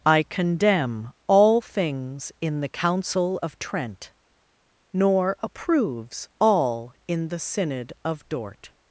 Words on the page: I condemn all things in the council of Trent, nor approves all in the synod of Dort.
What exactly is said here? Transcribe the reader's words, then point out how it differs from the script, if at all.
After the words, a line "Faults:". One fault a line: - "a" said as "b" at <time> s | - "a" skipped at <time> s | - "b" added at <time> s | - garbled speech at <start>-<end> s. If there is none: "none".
I condemn all things in the council of Trent, nor approves all in the synod of Dort.
Faults:
none